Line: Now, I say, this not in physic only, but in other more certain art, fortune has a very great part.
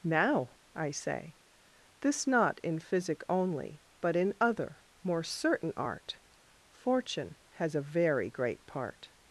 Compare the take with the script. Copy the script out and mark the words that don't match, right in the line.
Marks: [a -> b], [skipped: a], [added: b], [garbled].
Now, I say, this not in physic only, but in other more certain art, fortune has a very great part.